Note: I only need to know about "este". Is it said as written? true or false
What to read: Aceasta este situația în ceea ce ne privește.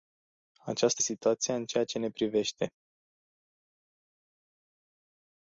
false